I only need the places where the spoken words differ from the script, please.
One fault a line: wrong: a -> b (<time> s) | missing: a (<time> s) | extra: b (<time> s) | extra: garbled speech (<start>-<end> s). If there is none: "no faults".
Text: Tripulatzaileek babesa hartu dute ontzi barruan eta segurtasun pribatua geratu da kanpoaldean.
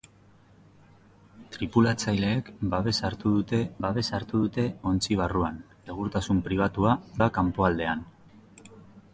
extra: babesa hartu dute (3.8 s)
missing: eta (5.6 s)
missing: geratu (7.0 s)